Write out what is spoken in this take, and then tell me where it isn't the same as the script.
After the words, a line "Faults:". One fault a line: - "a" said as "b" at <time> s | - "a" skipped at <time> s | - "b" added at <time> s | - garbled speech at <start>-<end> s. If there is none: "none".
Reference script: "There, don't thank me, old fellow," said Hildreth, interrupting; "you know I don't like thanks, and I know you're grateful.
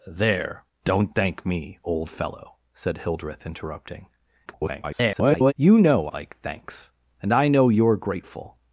"There, don't thank me, old fellow," said Hildreth, interrupting; [garbled] "you know like thanks, and I know you're grateful.
Faults:
- garbled speech at 4.5-5.5 s
- "I don't" skipped at 6.1 s